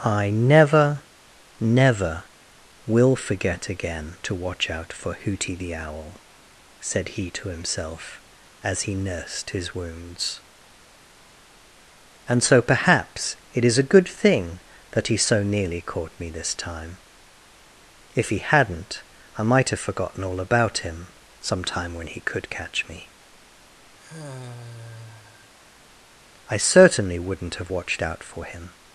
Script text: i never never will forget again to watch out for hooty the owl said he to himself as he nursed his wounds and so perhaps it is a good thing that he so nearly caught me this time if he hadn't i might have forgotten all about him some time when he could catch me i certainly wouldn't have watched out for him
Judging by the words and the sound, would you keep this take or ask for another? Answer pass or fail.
fail